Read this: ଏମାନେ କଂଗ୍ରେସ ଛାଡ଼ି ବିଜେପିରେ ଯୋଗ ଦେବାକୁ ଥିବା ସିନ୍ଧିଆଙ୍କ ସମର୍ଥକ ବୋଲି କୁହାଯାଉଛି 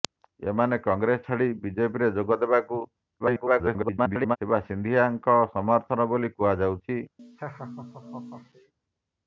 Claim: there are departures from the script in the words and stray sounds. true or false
true